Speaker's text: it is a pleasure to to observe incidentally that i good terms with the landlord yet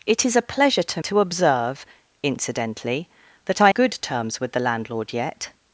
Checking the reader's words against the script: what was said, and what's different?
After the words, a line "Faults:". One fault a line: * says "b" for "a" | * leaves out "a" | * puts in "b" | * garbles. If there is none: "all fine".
it is a pleasure to to observe incidentally that i good terms with the landlord yet
Faults:
all fine